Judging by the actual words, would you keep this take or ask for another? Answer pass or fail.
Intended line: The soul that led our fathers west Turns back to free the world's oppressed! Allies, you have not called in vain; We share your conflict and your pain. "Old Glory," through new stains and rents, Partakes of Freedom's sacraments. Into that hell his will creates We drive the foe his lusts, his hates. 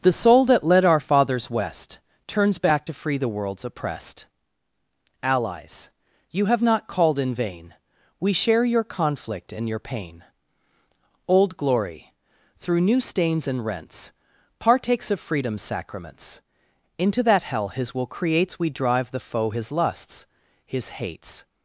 pass